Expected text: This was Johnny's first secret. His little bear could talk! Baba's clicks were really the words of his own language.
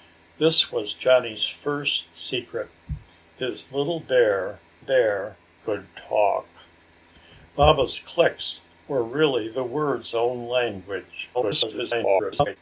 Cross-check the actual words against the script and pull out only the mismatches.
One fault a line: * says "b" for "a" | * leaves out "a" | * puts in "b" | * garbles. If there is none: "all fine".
* puts in "bear"
* leaves out "of his"
* garbles